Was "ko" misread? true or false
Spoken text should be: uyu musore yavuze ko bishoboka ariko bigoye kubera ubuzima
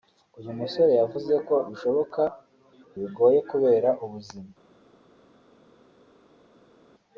false